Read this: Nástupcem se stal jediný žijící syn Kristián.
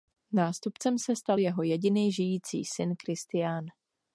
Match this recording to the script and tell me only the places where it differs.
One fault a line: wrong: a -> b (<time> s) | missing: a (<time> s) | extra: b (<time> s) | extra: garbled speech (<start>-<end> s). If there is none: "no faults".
extra: jeho (1.4 s)